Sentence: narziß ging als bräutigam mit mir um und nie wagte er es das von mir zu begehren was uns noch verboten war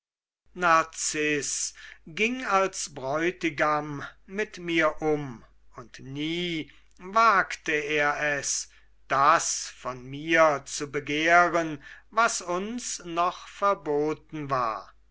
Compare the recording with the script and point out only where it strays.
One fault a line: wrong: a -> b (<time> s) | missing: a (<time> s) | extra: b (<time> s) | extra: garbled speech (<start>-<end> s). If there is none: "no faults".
no faults